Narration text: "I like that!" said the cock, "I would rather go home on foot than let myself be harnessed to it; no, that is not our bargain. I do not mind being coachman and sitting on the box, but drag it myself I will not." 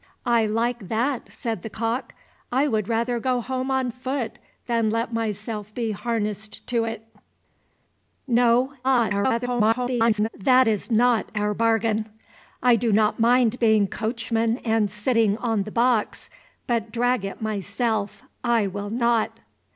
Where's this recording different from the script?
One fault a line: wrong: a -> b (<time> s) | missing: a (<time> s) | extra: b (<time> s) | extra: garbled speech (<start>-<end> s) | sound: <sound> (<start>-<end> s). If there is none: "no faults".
extra: garbled speech (8.8-10.3 s)